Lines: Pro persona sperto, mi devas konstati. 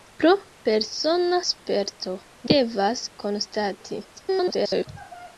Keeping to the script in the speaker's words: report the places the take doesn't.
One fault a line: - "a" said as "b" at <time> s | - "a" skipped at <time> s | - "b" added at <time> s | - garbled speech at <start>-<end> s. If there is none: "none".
- "mi" skipped at 2.2 s
- garbled speech at 4.1-4.9 s